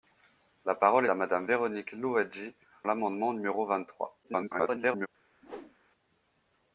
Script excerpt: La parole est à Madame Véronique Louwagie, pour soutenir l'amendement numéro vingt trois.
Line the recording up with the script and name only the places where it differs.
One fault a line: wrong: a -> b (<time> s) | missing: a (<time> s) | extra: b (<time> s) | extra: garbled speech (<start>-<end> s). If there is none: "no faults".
missing: est (1.1 s)
missing: pour soutenir (2.5 s)
extra: garbled speech (4.2-5.1 s)